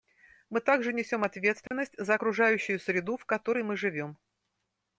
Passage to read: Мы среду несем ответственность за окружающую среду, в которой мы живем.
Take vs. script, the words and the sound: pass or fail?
fail